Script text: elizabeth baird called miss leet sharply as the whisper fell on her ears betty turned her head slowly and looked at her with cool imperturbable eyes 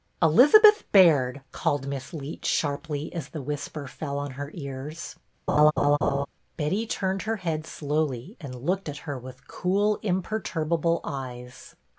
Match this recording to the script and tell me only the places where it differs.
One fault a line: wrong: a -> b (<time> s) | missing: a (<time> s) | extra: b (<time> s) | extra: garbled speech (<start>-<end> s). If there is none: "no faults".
no faults